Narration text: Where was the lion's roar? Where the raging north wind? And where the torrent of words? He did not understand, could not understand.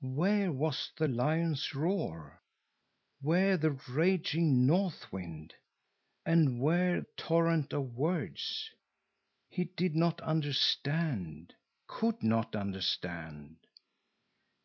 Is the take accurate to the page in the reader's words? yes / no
no